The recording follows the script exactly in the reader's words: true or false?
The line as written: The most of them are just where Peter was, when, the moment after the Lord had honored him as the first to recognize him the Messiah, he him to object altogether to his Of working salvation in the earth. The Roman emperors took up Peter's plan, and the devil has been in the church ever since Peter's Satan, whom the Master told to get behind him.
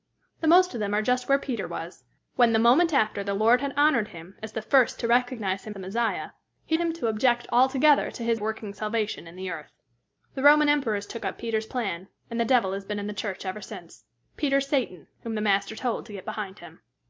true